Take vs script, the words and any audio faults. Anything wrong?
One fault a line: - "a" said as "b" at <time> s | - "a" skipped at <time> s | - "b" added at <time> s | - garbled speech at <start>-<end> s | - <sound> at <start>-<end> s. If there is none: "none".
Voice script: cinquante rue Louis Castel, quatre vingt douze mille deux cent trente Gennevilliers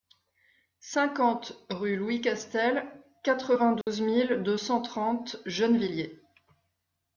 - dropout at 3.8-3.9 s